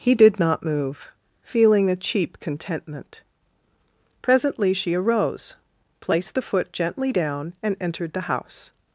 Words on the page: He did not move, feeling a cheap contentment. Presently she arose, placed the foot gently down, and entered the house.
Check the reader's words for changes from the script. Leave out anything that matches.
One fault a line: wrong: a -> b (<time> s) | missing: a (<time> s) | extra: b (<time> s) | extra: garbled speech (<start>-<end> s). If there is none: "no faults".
no faults